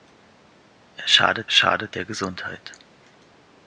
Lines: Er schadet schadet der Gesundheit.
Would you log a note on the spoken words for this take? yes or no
no